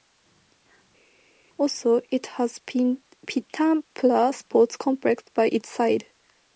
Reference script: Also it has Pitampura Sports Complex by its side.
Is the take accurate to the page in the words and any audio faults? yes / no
yes